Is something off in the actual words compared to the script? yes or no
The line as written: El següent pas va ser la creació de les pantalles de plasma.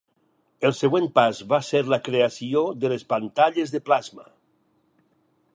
no